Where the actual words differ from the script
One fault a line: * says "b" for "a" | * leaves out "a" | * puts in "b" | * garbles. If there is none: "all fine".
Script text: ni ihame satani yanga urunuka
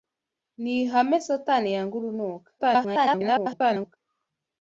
* garbles